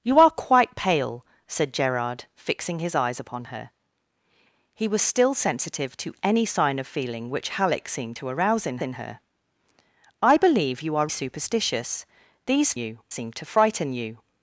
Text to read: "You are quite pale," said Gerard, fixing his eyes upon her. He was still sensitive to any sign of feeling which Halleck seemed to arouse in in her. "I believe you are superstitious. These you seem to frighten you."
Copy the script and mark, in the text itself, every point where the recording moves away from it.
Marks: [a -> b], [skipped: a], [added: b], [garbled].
"You are quite pale," said Gerard, fixing his eyes upon her. He was still sensitive to any sign of feeling which Halleck seemed to arouse in in her. "I believe you are superstitious. These you seem to frighten you."